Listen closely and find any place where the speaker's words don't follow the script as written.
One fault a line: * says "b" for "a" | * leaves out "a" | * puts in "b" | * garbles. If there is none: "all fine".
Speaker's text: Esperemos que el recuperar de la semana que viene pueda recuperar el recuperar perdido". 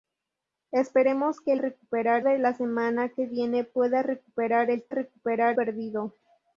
all fine